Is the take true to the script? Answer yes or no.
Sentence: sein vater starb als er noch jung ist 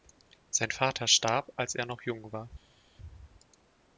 no